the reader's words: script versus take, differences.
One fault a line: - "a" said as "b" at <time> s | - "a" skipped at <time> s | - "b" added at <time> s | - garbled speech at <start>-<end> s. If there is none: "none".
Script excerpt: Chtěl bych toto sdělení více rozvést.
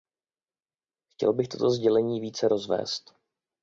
none